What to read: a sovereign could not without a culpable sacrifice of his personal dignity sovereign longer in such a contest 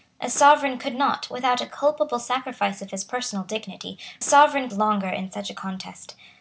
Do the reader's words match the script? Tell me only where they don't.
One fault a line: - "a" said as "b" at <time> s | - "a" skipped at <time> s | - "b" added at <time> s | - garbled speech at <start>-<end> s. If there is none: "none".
none